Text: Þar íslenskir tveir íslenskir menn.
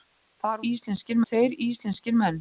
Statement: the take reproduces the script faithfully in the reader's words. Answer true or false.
true